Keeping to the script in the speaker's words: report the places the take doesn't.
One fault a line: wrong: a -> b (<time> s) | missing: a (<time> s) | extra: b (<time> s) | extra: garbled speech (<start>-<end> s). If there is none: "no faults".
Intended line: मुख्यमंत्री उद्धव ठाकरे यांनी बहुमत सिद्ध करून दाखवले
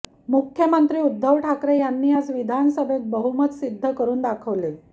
extra: आज विधानसभेत (2.1 s)